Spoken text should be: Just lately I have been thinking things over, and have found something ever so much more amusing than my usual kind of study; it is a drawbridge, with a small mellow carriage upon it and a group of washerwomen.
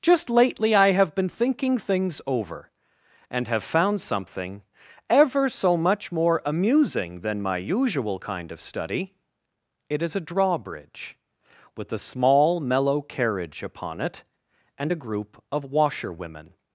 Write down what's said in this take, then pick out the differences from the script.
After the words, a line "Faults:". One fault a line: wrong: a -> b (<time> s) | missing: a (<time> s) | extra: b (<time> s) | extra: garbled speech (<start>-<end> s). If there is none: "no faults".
Just lately I have been thinking things over, and have found something ever so much more amusing than my usual kind of study; it is a drawbridge, with a small mellow carriage upon it and a group of washerwomen.
Faults:
no faults